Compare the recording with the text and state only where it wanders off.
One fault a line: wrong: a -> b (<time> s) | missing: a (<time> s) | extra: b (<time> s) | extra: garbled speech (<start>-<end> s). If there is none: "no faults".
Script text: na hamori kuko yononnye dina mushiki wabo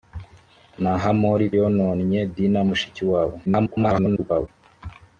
missing: kuko (1.4 s)
extra: garbled speech (3.5-4.5 s)